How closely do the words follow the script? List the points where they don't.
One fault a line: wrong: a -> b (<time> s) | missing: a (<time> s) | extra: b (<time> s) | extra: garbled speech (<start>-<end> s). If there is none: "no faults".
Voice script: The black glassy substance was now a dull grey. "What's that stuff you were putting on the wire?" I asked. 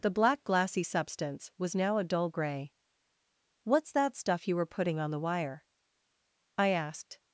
no faults